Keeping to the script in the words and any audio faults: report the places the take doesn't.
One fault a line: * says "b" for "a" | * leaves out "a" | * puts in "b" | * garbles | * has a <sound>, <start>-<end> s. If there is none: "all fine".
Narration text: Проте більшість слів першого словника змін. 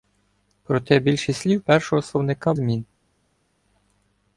all fine